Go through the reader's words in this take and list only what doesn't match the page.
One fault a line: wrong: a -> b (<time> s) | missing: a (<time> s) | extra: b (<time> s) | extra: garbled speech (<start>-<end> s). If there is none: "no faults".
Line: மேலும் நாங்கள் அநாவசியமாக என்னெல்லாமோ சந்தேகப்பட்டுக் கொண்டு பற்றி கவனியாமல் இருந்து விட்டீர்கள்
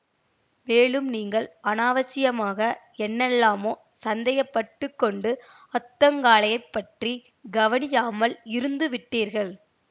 wrong: நாங்கள் -> நீங்கள் (1.1 s)
extra: அத்தங்காளையப் (5.7 s)